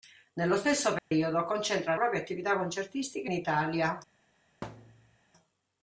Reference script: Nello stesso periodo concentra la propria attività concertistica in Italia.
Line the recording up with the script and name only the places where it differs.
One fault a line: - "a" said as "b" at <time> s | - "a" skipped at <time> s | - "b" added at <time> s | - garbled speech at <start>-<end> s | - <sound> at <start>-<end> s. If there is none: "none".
- dropout at 1.0-1.1 s
- "la" skipped at 1.9 s
- "in" skipped at 3.3 s
- thud at 4.6-5.2 s